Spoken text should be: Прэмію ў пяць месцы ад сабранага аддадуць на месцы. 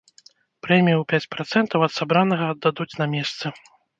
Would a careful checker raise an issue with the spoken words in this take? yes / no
yes